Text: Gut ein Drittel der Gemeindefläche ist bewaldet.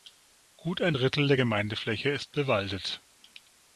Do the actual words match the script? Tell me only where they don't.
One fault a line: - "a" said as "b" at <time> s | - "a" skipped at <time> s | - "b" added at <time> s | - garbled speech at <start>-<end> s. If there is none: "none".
none